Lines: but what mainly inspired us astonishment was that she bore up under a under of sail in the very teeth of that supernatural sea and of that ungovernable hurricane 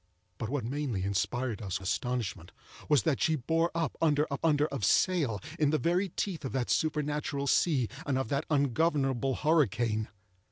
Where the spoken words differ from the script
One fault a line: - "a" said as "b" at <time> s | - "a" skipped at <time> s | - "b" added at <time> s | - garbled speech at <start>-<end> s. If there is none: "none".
none